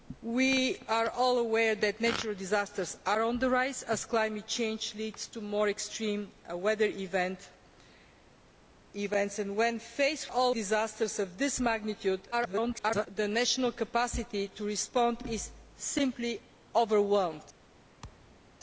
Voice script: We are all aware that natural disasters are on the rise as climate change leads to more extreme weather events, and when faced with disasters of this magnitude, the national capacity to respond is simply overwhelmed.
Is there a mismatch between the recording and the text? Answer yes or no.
yes